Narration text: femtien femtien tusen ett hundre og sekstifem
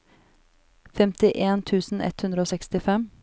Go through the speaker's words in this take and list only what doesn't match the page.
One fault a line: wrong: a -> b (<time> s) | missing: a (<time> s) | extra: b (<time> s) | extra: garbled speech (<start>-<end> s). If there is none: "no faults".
missing: femtien (1.6 s)